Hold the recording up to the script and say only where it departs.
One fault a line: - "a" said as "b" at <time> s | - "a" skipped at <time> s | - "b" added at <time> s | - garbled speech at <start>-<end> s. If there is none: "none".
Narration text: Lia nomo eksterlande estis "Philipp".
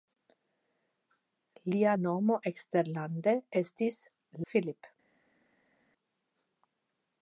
none